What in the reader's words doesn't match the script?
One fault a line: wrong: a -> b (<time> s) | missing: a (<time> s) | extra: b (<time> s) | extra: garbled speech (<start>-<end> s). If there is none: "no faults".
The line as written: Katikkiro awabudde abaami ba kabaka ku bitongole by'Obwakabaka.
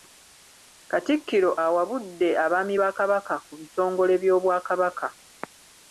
no faults